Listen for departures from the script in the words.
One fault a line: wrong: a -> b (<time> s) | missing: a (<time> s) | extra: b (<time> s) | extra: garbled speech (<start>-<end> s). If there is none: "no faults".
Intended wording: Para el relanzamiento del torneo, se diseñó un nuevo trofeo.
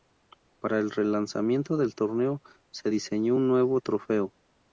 no faults